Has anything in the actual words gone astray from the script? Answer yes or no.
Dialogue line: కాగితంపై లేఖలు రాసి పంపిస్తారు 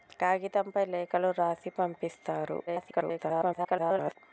yes